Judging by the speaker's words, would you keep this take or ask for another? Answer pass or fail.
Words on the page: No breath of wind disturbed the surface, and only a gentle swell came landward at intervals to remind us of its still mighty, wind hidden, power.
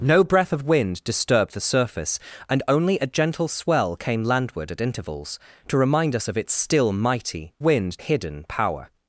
pass